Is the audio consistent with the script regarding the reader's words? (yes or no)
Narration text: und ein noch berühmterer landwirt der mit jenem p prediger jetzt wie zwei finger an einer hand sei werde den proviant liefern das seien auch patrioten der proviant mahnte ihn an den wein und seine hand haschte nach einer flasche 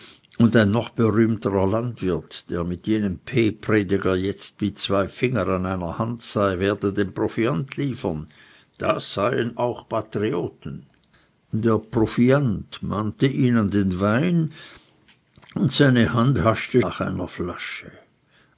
yes